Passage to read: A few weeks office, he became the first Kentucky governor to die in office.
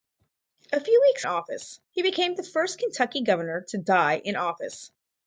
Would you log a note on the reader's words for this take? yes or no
no